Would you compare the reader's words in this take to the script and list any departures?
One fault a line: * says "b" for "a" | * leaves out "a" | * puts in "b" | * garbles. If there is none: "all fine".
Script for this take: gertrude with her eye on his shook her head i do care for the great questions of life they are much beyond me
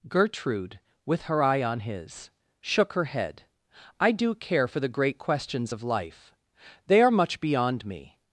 all fine